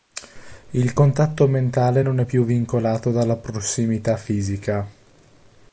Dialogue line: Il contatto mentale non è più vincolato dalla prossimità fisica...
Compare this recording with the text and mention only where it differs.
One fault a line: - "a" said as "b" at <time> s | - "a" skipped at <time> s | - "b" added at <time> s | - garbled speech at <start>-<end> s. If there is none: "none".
none